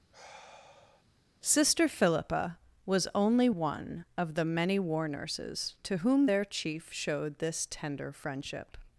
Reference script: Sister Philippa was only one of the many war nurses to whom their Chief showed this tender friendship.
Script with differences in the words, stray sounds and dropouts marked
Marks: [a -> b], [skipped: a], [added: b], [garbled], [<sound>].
[sigh] Sister Philippa was only one of the many war nurses to whom their Chief showed this tender friendship.